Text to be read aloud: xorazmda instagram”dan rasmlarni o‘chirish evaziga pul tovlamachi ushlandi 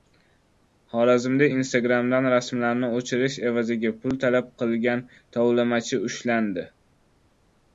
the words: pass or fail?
fail